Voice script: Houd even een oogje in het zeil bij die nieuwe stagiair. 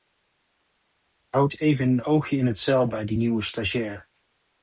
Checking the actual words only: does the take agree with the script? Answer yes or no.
yes